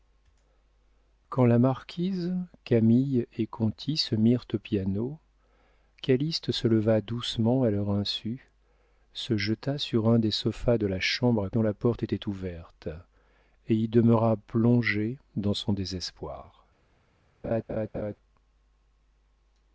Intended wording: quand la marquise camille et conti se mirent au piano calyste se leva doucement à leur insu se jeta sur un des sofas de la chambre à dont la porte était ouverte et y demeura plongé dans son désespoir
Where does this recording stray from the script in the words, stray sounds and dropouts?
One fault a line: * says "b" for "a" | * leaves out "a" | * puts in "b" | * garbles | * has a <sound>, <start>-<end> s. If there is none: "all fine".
* has a laugh, 17.4-18.2 s